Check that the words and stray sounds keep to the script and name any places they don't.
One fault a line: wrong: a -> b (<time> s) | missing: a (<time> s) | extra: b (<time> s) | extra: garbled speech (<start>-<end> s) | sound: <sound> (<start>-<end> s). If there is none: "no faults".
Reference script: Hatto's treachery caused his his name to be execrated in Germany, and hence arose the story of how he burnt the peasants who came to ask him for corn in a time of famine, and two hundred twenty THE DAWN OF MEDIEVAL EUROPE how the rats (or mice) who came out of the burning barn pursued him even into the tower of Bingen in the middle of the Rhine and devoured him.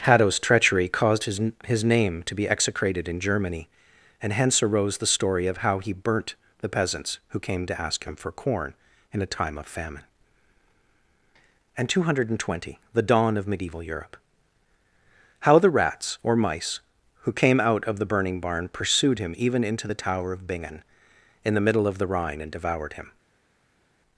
no faults